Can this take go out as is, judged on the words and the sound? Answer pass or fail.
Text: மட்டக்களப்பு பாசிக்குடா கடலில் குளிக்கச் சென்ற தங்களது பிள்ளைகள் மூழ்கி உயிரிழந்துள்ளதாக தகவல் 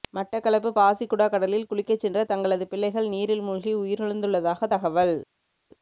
fail